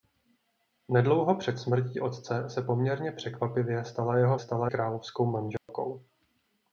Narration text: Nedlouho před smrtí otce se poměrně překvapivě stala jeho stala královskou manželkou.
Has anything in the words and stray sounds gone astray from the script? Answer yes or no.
yes